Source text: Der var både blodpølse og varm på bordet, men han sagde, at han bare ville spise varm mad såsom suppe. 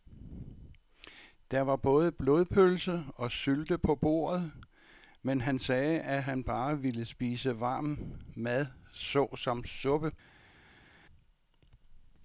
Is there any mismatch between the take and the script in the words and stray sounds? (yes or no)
yes